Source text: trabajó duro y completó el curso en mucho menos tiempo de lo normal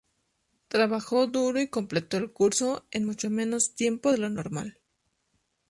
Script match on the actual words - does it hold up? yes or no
yes